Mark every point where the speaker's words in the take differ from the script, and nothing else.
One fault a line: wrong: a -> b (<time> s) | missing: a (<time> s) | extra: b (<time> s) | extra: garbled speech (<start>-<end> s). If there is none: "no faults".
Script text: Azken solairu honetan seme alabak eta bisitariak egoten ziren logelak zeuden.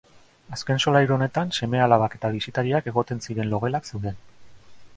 no faults